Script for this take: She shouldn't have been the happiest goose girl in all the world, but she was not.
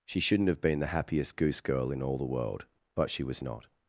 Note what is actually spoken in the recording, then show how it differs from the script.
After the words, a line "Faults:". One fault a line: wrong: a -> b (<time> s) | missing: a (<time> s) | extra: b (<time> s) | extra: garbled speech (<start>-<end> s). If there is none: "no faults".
She shouldn't have been the happiest goose girl in all the world, but she was not.
Faults:
no faults